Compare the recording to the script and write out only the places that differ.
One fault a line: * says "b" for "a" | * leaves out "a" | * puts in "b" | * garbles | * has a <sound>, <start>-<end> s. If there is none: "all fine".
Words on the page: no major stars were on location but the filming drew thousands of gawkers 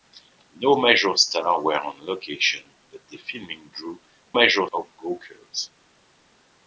* says "major" for "thousands"